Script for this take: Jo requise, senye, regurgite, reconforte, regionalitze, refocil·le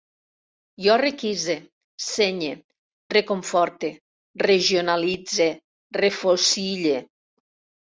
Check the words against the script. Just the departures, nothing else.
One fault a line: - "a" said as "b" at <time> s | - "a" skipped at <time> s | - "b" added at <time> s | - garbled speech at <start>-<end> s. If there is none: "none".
- "regurgite" skipped at 2.5 s